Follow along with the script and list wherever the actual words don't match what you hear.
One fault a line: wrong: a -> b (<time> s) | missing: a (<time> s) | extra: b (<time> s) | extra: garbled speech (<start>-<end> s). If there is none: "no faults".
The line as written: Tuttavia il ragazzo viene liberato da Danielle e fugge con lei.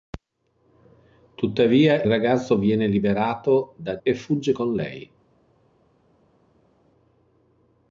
missing: il (2.0 s)
missing: Danielle (4.0 s)